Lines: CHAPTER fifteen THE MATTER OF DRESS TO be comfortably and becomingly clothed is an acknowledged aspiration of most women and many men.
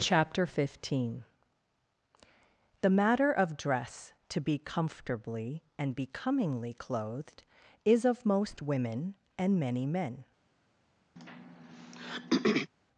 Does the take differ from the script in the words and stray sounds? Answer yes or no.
yes